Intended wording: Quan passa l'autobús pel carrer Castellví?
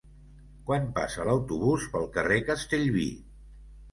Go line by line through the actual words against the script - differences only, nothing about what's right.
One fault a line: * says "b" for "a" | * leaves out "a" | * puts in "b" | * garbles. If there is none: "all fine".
all fine